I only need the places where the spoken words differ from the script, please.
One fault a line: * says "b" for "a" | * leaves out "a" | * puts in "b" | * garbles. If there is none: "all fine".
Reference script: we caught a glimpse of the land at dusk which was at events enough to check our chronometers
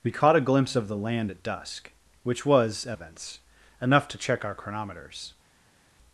all fine